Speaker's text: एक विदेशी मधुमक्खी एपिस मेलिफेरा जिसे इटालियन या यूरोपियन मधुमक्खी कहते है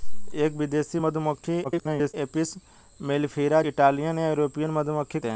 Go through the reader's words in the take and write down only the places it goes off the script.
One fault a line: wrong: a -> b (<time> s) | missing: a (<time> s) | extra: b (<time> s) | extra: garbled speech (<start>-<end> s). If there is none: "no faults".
extra: garbled speech (1.6-2.1 s)
missing: जिसे (3.6 s)
missing: कहते (5.2 s)